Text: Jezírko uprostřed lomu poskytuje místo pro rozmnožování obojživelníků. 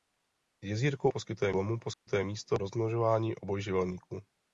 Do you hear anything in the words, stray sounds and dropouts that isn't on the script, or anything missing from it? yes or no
yes